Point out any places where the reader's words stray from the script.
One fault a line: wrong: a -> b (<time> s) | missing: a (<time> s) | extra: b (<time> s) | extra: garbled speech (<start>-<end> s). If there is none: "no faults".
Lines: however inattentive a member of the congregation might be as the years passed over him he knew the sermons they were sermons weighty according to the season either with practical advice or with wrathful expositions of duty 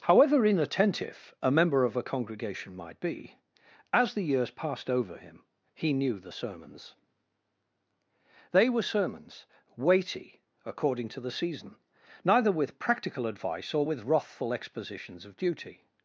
wrong: the -> a (1.9 s)
wrong: either -> neither (12.2 s)